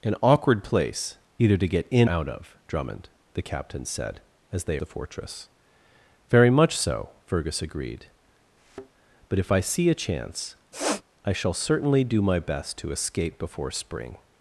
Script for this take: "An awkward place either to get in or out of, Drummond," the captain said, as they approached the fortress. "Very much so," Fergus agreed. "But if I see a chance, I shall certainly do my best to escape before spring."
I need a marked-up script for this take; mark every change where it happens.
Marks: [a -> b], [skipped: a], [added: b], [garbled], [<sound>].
"An awkward place either to get in [skipped: or] out of, Drummond," the captain said, as they [skipped: approached] the fortress. "Very much so," Fergus agreed. [thud] "But if I see a chance, [sniff] I shall certainly do my best to escape before spring."